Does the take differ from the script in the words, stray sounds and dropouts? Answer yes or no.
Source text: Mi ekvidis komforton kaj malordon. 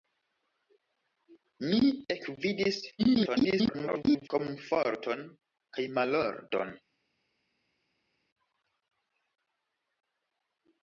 yes